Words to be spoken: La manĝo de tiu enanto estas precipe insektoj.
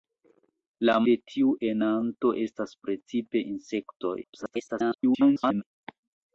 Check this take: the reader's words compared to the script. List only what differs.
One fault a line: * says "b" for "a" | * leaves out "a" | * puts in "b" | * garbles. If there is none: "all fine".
* leaves out "manĝo"
* garbles